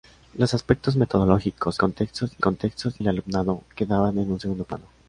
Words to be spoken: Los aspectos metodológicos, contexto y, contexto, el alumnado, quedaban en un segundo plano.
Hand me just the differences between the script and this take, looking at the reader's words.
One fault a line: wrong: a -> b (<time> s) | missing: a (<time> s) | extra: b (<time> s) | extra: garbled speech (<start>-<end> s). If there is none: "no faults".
no faults